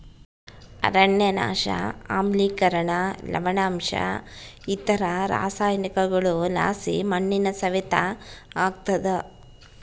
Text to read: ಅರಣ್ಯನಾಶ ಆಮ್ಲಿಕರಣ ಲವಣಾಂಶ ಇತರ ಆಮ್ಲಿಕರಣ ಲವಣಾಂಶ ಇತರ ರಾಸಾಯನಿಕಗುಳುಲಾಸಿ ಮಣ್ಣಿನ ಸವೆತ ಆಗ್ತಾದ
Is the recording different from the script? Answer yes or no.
yes